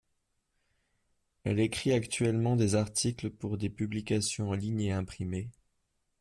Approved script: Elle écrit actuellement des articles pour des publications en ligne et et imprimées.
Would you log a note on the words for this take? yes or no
yes